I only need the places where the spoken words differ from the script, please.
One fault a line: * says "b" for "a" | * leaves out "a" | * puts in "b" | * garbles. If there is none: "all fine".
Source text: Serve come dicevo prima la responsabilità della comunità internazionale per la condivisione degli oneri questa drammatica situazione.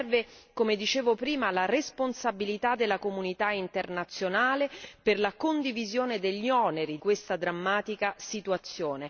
all fine